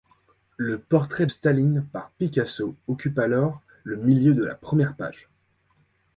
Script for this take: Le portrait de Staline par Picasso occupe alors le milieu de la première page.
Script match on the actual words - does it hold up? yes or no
no